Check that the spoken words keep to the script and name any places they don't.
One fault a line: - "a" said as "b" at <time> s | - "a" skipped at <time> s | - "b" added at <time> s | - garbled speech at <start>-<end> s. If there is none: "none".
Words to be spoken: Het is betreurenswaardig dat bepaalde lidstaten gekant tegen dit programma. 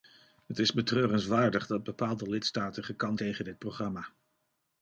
none